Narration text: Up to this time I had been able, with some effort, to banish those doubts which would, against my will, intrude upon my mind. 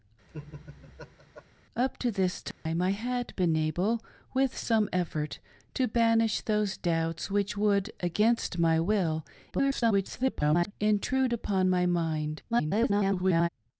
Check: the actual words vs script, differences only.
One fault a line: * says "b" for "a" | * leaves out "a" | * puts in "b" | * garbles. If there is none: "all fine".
* garbles
* garbles